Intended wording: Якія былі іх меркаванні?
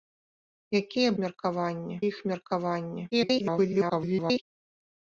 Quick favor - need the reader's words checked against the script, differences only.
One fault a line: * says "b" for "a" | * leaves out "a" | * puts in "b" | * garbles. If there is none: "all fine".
* says "меркаванні" for "былі"
* garbles